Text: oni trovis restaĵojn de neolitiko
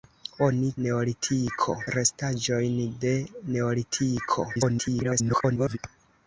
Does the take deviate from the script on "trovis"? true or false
true